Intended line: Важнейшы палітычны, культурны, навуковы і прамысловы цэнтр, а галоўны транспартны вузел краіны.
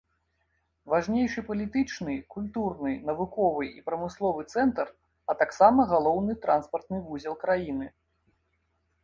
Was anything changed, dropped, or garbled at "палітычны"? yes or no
no